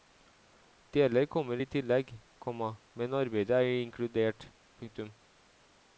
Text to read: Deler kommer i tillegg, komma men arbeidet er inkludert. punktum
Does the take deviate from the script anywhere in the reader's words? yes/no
no